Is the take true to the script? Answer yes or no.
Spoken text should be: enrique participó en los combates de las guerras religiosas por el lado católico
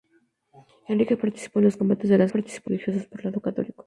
no